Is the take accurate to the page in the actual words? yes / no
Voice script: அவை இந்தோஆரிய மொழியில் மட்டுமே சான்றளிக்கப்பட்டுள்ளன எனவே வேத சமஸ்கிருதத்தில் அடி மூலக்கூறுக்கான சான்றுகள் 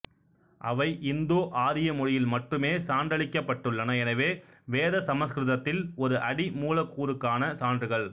no